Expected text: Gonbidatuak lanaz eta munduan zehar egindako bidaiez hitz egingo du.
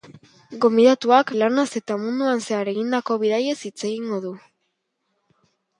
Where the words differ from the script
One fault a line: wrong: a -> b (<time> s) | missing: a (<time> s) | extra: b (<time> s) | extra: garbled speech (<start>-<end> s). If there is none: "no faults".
no faults